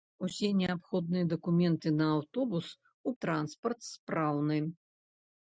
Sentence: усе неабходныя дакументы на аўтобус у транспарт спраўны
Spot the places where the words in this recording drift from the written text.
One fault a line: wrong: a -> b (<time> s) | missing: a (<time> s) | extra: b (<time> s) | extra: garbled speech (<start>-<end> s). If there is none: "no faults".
no faults